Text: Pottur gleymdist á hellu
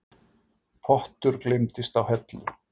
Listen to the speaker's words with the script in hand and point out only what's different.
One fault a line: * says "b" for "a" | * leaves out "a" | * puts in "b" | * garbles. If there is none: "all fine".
all fine